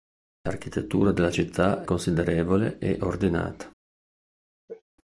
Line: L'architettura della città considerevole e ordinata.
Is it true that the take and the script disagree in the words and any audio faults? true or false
true